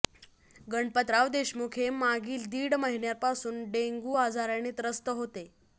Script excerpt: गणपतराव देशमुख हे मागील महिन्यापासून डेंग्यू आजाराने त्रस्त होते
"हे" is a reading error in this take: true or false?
false